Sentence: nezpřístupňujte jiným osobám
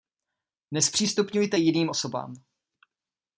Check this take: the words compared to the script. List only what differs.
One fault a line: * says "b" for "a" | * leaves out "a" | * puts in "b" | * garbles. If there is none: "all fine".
all fine